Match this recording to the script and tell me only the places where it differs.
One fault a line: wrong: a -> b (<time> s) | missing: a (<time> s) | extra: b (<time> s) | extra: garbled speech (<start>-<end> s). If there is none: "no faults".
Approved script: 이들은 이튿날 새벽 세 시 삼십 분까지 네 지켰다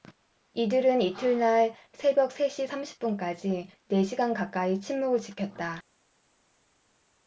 extra: 시간 가까이 침묵을 (4.0 s)